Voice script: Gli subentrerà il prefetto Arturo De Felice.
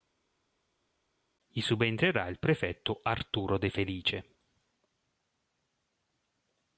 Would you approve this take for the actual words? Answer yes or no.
yes